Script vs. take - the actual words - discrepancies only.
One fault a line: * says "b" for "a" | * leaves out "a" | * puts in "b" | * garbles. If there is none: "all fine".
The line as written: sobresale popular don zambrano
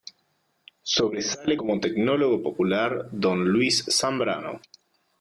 * puts in "como tecnólogo"
* puts in "luis"